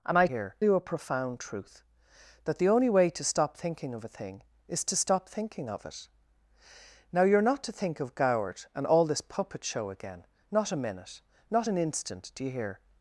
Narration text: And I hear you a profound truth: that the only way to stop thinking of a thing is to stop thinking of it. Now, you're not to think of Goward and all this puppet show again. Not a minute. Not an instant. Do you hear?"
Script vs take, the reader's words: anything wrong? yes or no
no